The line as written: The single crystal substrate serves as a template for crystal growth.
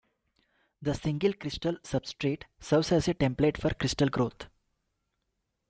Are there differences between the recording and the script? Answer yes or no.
no